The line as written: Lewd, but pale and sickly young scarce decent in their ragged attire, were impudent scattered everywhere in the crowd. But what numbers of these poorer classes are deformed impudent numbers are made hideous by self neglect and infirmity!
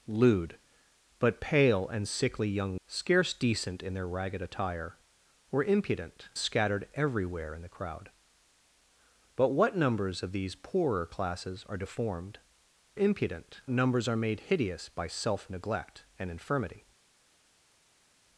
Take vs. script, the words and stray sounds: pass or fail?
pass